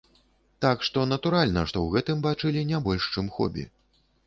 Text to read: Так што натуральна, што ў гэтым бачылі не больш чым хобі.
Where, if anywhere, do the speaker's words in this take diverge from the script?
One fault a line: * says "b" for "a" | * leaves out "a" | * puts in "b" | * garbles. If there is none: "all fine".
all fine